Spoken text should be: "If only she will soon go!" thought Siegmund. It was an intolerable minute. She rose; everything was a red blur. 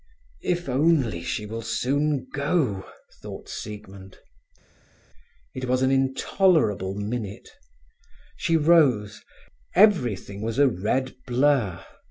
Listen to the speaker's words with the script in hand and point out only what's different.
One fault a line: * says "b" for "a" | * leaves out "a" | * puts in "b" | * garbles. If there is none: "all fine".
all fine